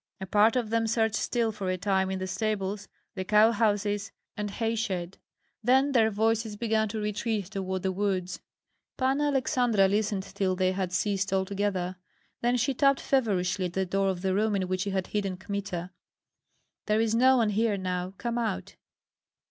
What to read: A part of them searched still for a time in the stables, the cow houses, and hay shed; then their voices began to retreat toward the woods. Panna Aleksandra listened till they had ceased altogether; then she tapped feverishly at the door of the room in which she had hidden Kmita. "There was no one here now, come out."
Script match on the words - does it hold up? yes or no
no